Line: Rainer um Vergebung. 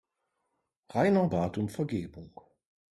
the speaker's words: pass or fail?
fail